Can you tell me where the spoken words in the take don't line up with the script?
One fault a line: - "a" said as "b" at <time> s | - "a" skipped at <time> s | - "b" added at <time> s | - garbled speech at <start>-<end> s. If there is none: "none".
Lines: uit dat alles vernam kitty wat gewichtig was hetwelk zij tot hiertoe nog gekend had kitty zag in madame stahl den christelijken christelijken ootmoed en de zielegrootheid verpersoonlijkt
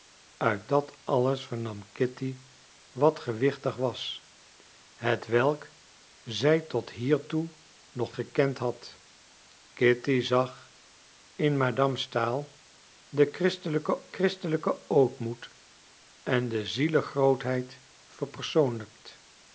none